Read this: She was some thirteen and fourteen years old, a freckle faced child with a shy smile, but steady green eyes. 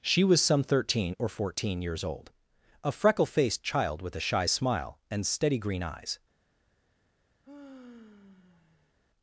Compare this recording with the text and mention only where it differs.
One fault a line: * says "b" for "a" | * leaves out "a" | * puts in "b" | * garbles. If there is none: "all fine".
* says "or" for "and"
* says "and" for "but"